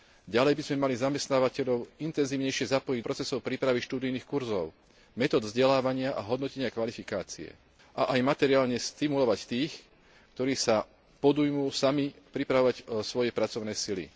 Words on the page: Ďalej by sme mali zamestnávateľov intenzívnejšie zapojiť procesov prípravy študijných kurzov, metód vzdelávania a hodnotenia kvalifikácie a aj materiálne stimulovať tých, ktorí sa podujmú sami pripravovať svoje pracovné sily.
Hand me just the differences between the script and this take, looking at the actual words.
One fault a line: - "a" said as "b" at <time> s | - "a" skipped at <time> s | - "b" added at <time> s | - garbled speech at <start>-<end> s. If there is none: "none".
none